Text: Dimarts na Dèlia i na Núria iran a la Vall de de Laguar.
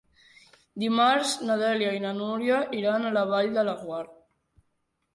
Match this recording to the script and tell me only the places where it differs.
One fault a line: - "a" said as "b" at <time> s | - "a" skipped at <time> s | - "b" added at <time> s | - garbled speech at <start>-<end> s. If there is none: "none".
- "de" skipped at 3.7 s